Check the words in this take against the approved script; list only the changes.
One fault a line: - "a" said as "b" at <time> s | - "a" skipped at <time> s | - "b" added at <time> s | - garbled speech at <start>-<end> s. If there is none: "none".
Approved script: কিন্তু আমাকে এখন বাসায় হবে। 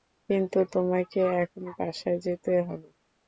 - "আমাকে" said as "তোমাকে" at 0.7 s
- "যেতে" added at 2.2 s